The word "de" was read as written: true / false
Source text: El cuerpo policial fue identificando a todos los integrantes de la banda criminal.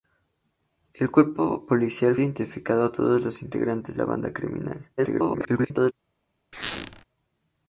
false